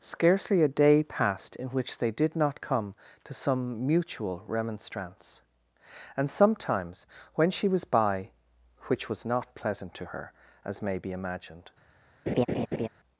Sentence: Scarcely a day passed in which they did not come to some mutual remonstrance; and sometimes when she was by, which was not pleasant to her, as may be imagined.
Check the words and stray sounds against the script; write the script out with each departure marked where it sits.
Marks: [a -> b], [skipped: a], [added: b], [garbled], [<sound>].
Scarcely a day passed in which they did not come to some mutual remonstrance; and sometimes when she was by, which was not pleasant to her, as may be imagined. [laugh]